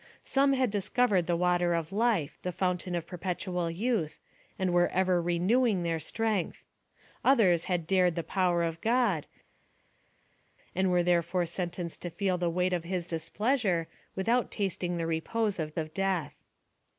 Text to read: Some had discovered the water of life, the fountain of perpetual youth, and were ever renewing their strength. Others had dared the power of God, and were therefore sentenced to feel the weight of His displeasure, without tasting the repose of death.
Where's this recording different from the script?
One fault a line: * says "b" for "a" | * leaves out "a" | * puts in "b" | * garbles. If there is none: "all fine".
* puts in "of"